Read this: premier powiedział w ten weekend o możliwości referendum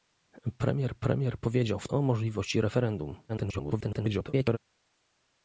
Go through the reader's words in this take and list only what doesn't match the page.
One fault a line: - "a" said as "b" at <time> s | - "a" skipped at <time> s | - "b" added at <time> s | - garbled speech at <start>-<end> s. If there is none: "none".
- "premier" added at 1.0 s
- "ten weekend" skipped at 1.9 s
- garbled speech at 3.3-4.6 s